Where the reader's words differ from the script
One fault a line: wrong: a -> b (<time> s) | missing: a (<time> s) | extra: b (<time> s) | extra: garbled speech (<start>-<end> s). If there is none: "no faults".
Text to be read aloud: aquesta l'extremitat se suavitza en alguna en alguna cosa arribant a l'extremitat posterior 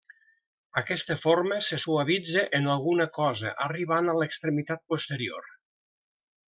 wrong: l'extremitat -> forma (1.2 s)
missing: en alguna (3.1 s)